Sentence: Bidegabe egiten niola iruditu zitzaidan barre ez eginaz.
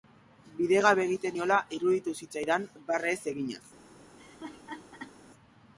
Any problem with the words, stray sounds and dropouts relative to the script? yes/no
yes